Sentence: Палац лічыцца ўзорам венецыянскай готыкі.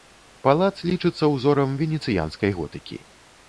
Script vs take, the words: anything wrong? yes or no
no